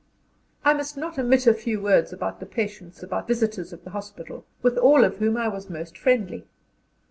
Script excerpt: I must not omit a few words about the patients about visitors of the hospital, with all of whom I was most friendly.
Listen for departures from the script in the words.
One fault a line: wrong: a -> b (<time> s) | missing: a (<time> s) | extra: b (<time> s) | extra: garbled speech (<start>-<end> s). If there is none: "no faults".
no faults